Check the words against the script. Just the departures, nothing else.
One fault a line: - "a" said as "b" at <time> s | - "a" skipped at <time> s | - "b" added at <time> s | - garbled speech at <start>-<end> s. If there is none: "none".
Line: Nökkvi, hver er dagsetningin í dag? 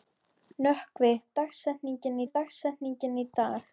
- "hver" said as "dagsetningin" at 1.4 s